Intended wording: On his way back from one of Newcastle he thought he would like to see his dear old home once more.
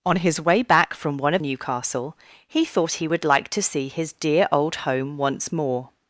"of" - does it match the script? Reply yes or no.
yes